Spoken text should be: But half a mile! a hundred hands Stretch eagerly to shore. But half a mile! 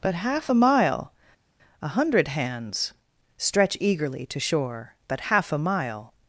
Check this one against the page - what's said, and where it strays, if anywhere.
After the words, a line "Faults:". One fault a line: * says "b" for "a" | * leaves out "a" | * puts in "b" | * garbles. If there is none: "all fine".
But half a mile! a hundred hands Stretch eagerly to shore. But half a mile!
Faults:
all fine